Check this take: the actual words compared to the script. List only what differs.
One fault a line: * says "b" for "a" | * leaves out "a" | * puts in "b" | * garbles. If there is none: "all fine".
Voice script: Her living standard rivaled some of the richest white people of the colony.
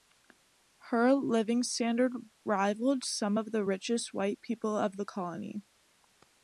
all fine